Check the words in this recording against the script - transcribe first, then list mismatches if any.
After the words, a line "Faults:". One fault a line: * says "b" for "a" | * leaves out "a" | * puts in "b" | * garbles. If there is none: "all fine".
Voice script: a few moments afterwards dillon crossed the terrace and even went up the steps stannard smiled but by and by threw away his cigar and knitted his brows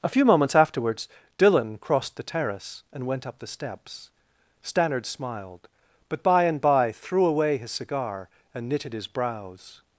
a few moments afterwards dillon crossed the terrace and went up the steps stannard smiled but by and by threw away his cigar and knitted his brows
Faults:
* leaves out "even"